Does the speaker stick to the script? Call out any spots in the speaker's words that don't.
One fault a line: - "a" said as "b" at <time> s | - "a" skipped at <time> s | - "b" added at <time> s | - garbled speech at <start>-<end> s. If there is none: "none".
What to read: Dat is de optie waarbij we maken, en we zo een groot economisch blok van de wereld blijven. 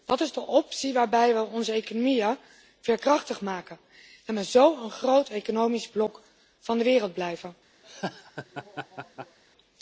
- "onze economieën veerkrachtig" added at 1.4 s